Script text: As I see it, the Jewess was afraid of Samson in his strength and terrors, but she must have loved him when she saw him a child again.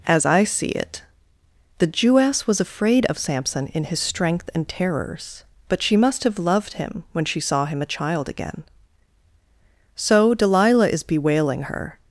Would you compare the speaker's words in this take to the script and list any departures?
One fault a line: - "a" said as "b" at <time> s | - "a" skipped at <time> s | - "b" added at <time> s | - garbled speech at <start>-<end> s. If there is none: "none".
- "So Delilah is bewailing her" added at 9.9 s